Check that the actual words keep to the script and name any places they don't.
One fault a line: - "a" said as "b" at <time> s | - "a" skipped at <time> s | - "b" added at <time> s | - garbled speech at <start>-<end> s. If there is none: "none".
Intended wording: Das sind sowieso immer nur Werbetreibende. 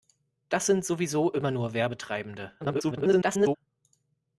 - garbled speech at 2.6-3.6 s